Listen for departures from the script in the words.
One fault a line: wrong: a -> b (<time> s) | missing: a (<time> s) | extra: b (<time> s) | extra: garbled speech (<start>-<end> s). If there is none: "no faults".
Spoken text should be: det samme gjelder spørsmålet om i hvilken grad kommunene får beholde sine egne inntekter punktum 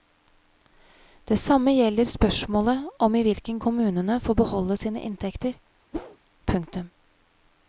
missing: grad (3.6 s)
missing: egne (5.0 s)